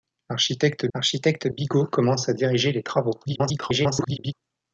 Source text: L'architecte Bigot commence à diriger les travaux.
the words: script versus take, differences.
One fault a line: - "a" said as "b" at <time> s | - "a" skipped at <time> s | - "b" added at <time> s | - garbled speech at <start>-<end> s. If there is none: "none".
- "l'architecte" added at 1.0 s
- garbled speech at 3.2-4.3 s